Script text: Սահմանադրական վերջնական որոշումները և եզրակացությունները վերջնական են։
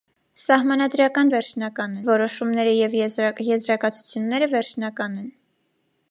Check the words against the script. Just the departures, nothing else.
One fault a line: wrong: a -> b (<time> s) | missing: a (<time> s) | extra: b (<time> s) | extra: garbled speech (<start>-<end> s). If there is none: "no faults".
no faults